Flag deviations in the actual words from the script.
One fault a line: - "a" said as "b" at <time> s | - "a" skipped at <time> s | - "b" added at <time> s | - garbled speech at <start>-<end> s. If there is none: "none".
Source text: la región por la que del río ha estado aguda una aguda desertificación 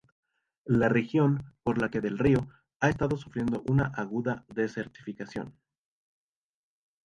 - "aguda" said as "sufriendo" at 3.2 s